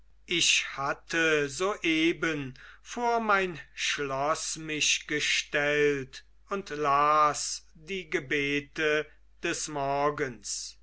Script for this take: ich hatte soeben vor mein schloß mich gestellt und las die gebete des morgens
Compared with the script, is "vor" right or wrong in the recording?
right